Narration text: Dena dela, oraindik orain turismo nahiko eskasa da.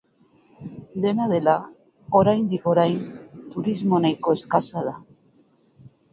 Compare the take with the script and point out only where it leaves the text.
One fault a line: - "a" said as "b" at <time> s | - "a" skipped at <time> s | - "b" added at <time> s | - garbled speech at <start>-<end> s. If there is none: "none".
none